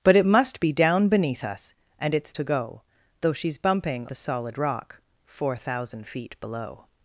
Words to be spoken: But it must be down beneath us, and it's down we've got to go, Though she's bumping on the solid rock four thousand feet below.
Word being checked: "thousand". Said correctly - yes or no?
yes